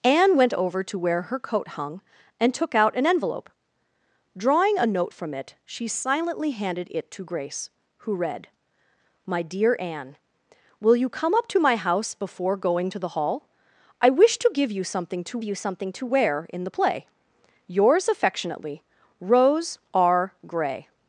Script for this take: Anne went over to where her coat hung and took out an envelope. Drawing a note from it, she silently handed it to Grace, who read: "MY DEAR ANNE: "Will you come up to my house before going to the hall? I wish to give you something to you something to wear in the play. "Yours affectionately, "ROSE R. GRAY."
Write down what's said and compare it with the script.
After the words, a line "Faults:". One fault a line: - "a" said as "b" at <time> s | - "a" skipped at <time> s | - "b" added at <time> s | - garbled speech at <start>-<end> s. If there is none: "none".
Anne went over to where her coat hung and took out an envelope. Drawing a note from it, she silently handed it to Grace, who read: "MY DEAR ANNE: "Will you come up to my house before going to the hall? I wish to give you something to you something to wear in the play. "Yours affectionately, "ROSE R. GRAY."
Faults:
none